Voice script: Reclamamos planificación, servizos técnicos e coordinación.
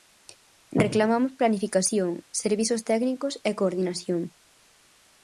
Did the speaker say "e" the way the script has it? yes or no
yes